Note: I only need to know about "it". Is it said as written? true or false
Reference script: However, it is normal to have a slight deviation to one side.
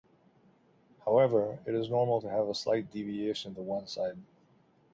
true